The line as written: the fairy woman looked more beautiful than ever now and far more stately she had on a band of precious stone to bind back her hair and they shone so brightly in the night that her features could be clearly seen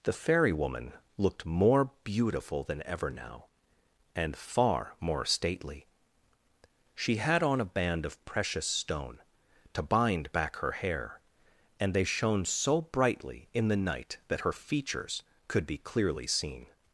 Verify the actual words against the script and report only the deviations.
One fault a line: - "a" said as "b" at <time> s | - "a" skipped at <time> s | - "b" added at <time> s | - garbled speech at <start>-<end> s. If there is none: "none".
none